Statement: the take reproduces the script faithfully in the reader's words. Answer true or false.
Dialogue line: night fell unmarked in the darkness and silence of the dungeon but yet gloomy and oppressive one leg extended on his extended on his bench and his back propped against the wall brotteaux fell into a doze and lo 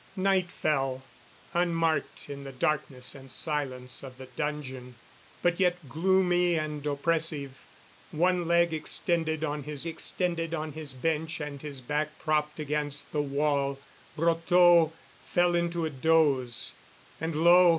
true